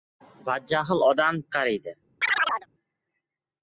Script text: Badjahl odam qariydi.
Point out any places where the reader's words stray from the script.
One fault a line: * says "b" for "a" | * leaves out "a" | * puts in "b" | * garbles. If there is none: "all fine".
all fine